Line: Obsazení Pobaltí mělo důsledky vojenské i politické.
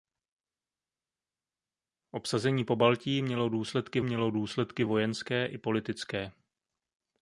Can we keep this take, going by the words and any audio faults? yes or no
no